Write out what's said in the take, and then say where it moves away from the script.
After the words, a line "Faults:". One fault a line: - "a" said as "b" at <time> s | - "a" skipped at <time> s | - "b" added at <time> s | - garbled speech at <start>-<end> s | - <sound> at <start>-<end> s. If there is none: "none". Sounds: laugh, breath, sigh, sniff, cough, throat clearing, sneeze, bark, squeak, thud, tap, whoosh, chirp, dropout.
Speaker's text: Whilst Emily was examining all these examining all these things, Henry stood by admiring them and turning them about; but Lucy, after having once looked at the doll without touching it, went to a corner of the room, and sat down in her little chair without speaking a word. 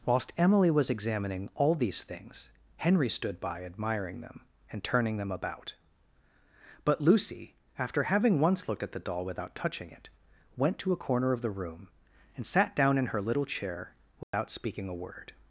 Whilst Emily was examining all these things, Henry stood by admiring them and turning them about; but Lucy, after having once looked at the doll without touching it, went to a corner of the room, and sat down in her little chair without speaking a word.
Faults:
- "examining all these" skipped at 2.0 s
- dropout at 14.2-14.3 s